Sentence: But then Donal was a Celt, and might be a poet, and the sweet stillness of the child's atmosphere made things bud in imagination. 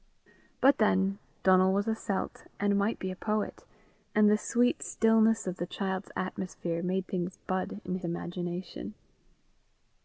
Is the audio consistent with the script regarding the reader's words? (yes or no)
yes